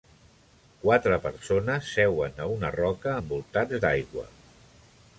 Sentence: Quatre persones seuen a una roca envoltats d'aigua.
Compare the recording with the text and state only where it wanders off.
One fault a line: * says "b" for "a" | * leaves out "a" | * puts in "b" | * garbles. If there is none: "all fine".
all fine